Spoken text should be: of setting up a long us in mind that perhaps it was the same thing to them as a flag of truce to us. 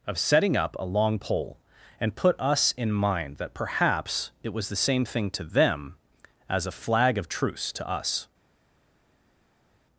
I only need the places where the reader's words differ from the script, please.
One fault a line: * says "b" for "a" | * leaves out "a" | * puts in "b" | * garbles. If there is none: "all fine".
* puts in "pole and put"